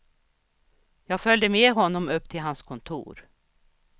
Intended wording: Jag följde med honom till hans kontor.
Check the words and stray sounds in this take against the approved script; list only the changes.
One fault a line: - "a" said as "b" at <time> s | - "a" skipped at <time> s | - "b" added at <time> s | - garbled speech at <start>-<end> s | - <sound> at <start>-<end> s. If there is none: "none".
- "upp" added at 2.1 s